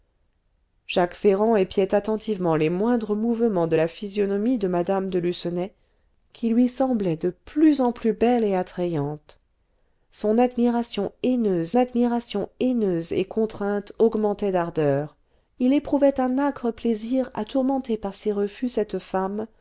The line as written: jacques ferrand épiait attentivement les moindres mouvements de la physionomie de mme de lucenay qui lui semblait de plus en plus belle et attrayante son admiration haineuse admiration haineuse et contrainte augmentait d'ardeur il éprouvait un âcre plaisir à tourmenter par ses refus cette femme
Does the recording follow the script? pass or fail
pass